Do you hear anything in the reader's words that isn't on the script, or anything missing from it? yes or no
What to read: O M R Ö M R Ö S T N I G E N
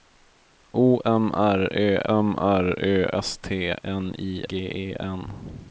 no